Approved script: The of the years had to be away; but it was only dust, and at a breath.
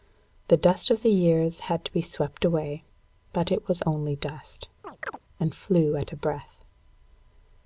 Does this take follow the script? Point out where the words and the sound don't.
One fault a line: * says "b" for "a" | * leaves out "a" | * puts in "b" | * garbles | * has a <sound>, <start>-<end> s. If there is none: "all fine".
* puts in "dust"
* puts in "swept"
* has a chirp, 4.8-5.2 s
* puts in "flew"